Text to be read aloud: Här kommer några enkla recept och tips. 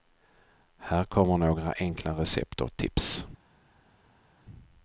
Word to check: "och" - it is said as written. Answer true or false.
true